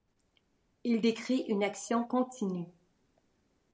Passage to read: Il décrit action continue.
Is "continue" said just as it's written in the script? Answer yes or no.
yes